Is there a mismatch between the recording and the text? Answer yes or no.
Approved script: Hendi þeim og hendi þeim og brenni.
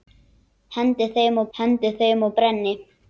no